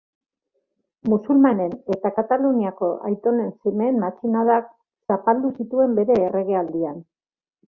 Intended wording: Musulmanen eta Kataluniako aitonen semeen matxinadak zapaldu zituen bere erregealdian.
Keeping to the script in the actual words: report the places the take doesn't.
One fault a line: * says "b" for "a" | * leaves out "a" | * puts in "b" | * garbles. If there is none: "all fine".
all fine